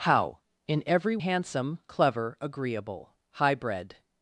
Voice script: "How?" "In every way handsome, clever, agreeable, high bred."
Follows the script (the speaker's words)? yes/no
no